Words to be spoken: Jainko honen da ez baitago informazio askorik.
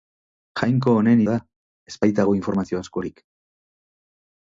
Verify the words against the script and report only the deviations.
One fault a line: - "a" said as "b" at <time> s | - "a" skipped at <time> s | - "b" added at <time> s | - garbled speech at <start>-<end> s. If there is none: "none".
none